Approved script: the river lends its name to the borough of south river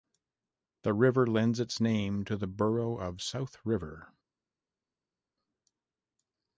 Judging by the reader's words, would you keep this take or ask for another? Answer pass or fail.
pass